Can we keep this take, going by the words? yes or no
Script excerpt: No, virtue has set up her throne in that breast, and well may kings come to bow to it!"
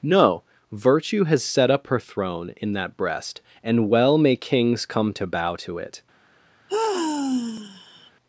yes